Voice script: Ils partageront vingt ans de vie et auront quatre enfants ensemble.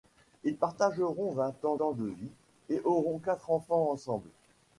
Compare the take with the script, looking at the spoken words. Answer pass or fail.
fail